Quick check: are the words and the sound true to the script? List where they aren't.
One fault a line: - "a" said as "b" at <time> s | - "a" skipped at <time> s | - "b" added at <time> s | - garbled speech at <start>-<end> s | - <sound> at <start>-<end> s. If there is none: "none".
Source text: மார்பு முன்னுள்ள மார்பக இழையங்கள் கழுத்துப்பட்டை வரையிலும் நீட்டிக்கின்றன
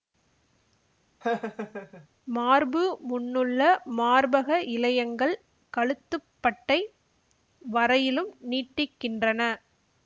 - laugh at 1.2-2.1 s